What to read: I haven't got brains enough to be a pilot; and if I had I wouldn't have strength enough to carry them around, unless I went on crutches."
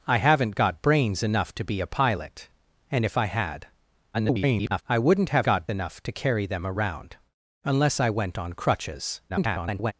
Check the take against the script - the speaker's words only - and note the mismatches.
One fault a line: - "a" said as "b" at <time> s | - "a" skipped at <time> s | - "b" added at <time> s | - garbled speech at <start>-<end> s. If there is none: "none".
- garbled speech at 4.1-4.8 s
- "strength" said as "got" at 5.4 s
- garbled speech at 9.3-9.9 s